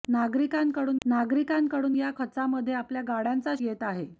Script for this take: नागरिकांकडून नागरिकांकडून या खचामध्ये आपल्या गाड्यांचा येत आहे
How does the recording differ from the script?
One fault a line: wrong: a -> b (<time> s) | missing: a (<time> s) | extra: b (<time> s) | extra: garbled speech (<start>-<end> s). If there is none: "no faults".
no faults